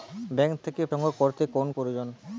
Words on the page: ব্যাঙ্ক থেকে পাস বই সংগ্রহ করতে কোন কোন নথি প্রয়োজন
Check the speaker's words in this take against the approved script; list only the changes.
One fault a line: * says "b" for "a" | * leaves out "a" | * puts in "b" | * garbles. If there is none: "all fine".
* leaves out "পাস বই"
* leaves out "কোন নথি"